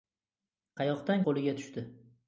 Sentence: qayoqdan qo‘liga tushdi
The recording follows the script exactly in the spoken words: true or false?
true